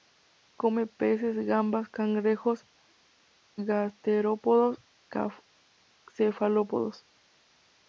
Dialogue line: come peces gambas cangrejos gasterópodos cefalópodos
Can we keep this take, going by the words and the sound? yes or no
yes